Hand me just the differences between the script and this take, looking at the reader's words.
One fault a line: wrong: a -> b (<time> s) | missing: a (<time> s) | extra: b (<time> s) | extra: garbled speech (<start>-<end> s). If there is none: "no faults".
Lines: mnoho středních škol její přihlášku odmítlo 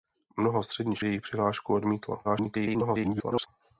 missing: škol (1.0 s)
extra: garbled speech (2.2-3.5 s)